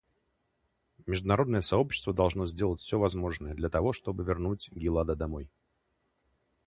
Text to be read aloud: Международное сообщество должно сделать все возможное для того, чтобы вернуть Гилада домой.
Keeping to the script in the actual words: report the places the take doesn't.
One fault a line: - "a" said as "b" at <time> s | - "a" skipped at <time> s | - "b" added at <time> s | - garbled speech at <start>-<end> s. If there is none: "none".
none